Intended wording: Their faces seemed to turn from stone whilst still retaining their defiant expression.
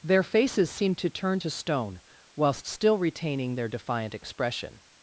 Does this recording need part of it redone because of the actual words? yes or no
yes